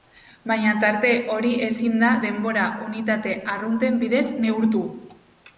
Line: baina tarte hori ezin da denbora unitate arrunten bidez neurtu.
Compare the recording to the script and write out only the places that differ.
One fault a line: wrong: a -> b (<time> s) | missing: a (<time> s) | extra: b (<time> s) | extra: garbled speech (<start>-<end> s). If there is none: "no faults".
no faults